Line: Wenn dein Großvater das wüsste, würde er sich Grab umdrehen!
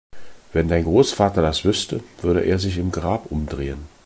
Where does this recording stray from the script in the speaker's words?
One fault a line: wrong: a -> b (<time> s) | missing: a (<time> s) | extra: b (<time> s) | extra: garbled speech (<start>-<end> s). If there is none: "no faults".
extra: im (2.8 s)